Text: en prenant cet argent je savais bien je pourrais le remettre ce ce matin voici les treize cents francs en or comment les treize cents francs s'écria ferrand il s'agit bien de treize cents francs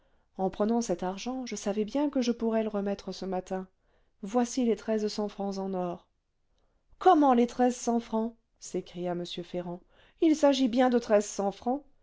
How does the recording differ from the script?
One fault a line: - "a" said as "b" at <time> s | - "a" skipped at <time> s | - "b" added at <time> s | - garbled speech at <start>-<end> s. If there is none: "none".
- "que" added at 2.1 s
- "ce" skipped at 3.3 s
- "m" added at 9.1 s